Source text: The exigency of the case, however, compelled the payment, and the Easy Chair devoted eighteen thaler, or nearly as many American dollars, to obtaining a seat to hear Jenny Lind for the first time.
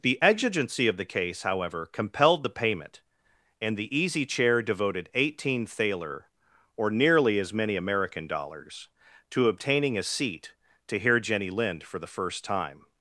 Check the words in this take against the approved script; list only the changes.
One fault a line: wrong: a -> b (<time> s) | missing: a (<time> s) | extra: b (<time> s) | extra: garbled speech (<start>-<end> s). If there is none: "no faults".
no faults